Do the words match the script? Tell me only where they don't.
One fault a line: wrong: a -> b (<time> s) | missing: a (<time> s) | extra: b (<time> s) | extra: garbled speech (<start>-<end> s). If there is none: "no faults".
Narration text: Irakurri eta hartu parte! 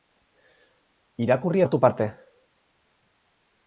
missing: eta (1.6 s)